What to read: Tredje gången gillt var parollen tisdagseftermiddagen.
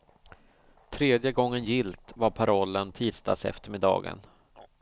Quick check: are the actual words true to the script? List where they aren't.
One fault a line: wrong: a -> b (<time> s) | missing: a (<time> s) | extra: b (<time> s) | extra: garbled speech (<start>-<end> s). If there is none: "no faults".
no faults